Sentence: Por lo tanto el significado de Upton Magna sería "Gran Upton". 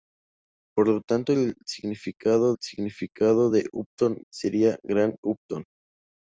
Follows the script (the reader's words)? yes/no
no